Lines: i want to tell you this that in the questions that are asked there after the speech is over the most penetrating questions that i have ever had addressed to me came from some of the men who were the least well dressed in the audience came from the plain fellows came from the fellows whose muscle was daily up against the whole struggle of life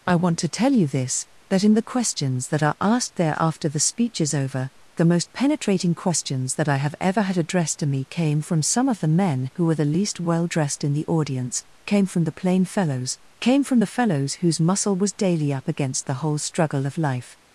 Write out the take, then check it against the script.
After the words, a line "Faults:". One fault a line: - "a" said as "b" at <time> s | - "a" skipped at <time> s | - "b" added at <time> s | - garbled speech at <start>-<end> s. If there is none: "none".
i want to tell you this that in the questions that are asked there after the speech is over the most penetrating questions that i have ever had addressed to me came from some of the men who were the least well dressed in the audience came from the plain fellows came from the fellows whose muscle was daily up against the whole struggle of life
Faults:
none